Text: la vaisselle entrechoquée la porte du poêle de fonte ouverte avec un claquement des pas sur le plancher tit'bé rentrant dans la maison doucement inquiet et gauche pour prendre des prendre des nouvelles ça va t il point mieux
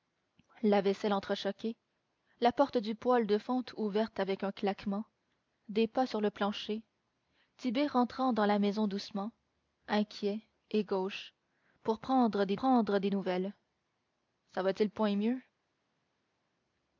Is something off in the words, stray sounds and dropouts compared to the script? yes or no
no